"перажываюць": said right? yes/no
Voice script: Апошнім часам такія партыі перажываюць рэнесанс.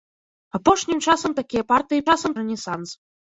no